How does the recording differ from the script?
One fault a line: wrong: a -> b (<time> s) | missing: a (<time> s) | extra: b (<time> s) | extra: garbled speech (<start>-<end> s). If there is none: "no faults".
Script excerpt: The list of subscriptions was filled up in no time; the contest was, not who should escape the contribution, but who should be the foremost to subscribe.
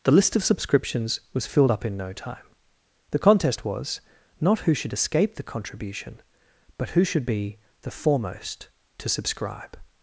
no faults